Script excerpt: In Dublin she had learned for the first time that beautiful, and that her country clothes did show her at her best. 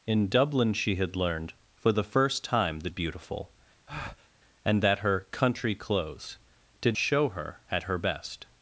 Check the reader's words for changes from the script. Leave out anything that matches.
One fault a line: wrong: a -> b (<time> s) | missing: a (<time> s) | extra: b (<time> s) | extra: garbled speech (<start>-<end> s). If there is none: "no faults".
no faults